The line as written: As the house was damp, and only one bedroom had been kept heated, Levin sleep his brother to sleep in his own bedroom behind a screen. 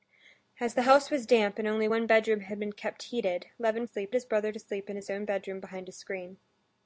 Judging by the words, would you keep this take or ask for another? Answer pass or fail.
pass